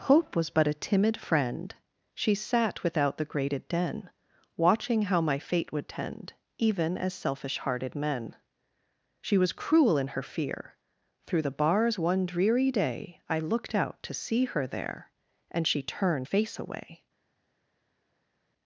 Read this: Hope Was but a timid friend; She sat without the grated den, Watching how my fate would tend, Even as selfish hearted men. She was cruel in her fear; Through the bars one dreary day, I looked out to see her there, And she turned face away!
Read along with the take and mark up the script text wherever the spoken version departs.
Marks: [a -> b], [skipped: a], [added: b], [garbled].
Hope Was but a timid friend; She sat without the grated den, Watching how my fate would tend, Even as selfish hearted men. She was cruel in her fear; Through the bars one dreary day, I looked out to see her there, And she turned face away!